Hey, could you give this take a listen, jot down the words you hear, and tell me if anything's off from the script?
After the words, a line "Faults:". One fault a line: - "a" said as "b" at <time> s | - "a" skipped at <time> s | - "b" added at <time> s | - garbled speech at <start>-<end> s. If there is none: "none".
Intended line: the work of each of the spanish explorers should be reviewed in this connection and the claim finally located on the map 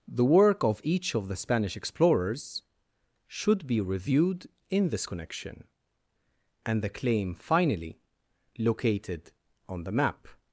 the work of each of the spanish explorers should be reviewed in this connection and the claim finally located on the map
Faults:
none